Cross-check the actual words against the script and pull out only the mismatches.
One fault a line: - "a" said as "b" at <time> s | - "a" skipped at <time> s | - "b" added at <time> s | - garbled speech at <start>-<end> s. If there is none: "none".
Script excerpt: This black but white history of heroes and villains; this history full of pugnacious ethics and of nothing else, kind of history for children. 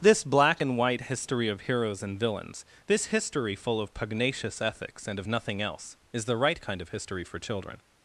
- "but" said as "and" at 0.6 s
- "is the right" added at 6.1 s